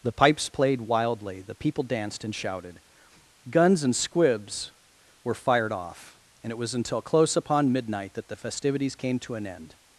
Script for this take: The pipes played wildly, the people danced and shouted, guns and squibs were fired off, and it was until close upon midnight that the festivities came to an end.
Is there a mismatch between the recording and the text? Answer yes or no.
no